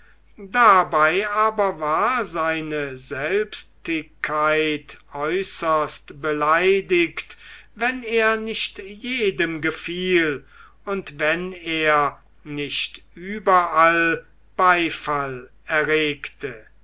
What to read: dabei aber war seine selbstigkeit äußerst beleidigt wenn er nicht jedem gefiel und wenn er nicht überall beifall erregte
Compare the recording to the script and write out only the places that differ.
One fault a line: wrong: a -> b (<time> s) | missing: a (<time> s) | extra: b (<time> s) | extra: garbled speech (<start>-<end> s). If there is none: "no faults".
no faults